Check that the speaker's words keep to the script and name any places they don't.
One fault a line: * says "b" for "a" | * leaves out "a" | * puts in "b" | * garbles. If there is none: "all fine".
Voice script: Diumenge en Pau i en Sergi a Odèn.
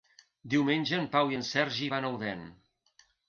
* puts in "van"